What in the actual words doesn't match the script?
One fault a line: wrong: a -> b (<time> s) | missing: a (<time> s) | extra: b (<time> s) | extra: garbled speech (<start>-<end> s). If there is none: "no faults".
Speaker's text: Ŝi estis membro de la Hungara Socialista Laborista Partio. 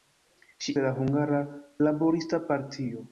missing: estis membro (0.7 s)
missing: Socialista (1.4 s)